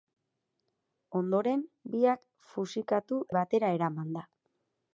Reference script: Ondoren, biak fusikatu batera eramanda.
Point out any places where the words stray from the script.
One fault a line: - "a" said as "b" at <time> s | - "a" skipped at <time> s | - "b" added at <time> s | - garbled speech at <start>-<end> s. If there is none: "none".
none